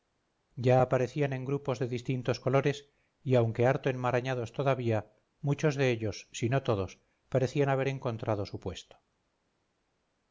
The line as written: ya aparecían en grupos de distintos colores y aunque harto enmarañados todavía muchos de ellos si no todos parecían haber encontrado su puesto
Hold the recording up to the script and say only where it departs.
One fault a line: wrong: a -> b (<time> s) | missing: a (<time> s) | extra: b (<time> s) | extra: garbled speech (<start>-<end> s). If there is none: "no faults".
no faults